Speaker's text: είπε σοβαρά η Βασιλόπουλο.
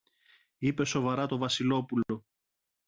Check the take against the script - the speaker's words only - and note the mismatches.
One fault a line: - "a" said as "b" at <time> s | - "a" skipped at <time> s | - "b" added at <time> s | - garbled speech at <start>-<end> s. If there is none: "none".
- "η" said as "το" at 1.2 s